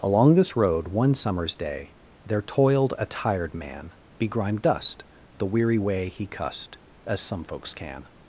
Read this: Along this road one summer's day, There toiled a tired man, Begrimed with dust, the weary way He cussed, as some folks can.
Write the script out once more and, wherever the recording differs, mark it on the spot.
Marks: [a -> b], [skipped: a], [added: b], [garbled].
Along this road one summer's day, There toiled a tired man, Begrimed [skipped: with] dust, the weary way He cussed, as some folks can.